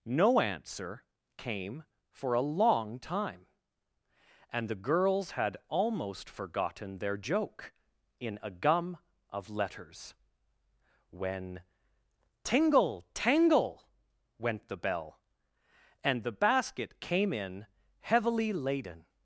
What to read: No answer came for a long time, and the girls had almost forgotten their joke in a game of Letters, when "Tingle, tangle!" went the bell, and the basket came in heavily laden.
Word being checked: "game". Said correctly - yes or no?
no